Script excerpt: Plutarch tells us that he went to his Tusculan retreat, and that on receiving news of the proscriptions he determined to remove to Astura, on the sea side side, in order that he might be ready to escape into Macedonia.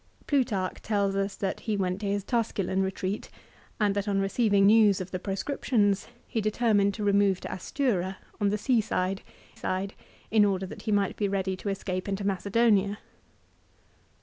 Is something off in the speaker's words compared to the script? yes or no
no